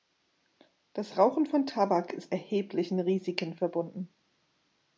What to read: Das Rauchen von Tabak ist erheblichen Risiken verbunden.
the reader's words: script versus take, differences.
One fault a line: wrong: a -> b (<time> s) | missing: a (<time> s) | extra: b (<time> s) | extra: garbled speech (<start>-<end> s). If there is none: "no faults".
no faults